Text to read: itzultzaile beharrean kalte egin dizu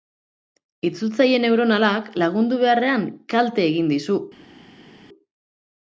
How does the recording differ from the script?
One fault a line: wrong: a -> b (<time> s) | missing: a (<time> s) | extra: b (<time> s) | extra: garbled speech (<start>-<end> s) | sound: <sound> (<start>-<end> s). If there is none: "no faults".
extra: neuronalak lagundu (1.4 s)